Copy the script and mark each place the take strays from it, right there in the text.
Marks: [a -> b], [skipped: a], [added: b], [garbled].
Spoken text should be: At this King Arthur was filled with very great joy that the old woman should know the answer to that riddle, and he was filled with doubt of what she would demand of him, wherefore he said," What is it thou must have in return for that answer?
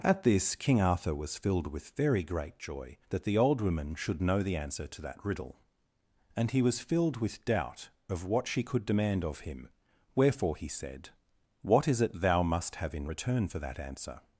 At this King Arthur was filled with very great joy that the old woman should know the answer to that riddle, and he was filled with doubt of what she [would -> could] demand of him, wherefore he said," What is it thou must have in return for that answer?